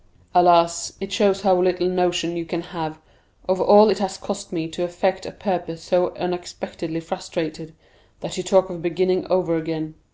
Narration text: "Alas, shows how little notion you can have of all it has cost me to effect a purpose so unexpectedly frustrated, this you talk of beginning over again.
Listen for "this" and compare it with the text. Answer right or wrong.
wrong